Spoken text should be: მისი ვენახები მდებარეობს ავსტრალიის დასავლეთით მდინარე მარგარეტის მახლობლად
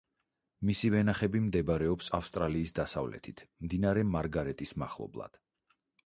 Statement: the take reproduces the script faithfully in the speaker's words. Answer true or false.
true